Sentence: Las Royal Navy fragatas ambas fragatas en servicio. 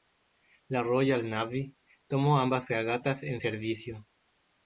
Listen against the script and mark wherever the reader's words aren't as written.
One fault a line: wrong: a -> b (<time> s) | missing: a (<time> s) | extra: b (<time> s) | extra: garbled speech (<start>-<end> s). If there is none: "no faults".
wrong: Las -> La (0.7 s)
wrong: fragatas -> tomó (2.1 s)